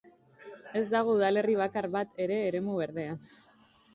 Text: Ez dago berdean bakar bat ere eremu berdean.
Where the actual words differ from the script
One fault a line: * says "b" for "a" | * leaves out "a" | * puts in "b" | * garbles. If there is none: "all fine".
* says "udalerri" for "berdean"